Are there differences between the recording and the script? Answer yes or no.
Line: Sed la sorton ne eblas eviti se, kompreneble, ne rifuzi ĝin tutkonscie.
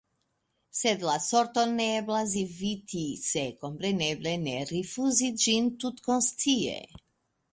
no